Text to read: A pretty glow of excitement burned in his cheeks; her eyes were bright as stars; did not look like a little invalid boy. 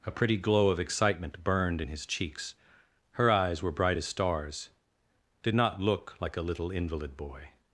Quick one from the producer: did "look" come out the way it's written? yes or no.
yes